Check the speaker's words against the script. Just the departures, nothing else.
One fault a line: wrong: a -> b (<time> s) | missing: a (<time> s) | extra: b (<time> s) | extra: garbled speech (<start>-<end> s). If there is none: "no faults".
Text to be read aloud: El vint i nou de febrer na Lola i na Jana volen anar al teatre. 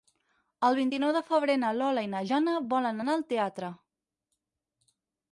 no faults